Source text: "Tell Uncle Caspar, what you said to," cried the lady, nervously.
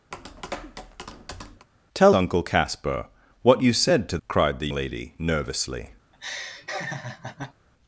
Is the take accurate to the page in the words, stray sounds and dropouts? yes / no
no